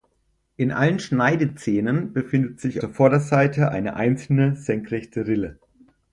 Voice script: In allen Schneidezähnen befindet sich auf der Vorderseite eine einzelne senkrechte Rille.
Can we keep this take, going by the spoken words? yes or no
no